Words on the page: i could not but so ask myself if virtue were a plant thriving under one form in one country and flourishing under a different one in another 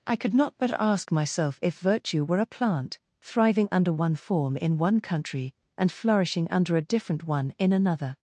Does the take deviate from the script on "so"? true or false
true